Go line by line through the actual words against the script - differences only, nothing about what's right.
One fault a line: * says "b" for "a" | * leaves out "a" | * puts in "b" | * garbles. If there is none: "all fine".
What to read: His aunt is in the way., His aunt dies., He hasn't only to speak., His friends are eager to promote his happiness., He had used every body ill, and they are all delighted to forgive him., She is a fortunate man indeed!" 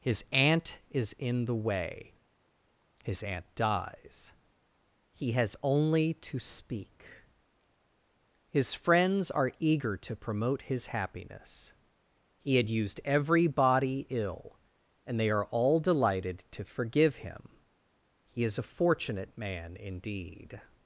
* says "has" for "hasn't"
* says "He" for "She"